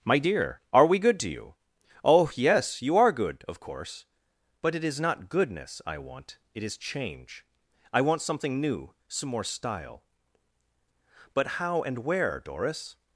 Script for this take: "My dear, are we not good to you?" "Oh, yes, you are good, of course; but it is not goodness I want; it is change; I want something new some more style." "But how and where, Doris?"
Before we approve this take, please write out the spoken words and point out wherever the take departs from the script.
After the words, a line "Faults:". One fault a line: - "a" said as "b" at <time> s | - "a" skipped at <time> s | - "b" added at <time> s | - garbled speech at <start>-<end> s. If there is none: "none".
"My dear, are we good to you?" "Oh, yes, you are good, of course; but it is not goodness I want; it is change; I want something new some more style." "But how and where, Doris?"
Faults:
- "not" skipped at 1.0 s